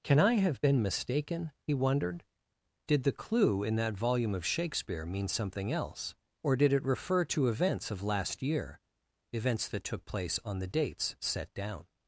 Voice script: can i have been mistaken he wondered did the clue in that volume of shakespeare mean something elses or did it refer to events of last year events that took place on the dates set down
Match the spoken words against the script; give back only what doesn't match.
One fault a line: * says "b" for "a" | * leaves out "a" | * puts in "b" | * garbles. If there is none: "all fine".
* says "else" for "elses"